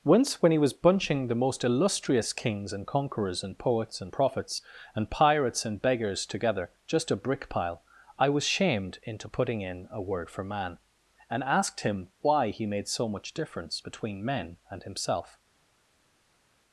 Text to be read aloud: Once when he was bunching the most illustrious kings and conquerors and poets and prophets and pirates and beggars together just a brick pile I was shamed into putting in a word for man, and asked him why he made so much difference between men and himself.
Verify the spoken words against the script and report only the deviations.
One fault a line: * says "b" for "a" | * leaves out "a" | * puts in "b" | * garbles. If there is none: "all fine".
all fine